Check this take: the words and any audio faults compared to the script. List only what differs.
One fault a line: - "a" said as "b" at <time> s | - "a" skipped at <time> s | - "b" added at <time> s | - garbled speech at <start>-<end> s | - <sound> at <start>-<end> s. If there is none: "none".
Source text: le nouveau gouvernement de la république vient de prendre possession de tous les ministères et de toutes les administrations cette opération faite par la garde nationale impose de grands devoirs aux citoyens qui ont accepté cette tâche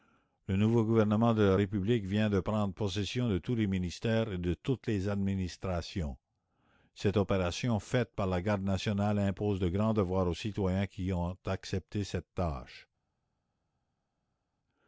none